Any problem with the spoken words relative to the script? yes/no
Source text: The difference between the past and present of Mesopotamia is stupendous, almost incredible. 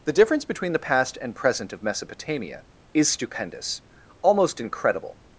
no